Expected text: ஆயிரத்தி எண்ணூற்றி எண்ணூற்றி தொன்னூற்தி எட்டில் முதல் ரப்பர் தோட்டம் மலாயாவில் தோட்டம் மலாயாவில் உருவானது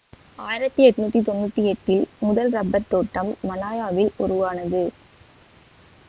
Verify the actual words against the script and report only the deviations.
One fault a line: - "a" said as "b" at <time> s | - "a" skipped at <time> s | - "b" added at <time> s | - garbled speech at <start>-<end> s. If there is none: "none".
- "எண்ணூற்றி" skipped at 1.2 s
- "தோட்டம் மலாயாவில்" skipped at 4.1 s